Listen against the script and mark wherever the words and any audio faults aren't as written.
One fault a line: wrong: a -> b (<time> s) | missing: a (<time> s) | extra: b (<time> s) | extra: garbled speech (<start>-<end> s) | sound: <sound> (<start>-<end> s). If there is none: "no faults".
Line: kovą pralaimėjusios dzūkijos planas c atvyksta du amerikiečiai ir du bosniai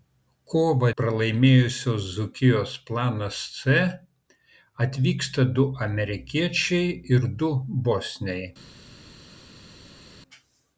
no faults